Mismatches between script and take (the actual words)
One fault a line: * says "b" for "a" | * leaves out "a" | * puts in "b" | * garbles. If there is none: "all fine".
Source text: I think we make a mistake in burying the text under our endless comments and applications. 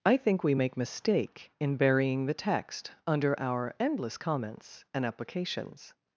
* leaves out "a"